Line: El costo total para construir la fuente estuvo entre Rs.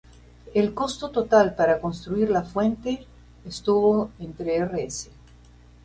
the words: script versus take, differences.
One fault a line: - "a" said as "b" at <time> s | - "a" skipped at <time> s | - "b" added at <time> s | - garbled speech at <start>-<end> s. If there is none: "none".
none